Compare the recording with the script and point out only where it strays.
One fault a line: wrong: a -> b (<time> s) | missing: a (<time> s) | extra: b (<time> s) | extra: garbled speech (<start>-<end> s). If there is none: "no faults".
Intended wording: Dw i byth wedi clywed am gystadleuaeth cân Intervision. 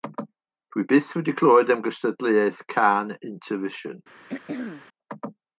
no faults